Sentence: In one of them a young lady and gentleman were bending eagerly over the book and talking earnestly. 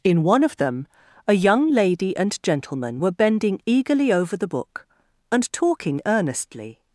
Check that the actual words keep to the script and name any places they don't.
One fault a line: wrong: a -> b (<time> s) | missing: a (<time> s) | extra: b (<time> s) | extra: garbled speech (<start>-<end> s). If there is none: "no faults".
no faults